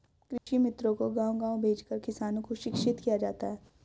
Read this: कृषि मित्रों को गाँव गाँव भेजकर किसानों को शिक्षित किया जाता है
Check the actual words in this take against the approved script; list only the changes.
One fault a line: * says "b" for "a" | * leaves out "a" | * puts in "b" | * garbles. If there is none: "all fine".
all fine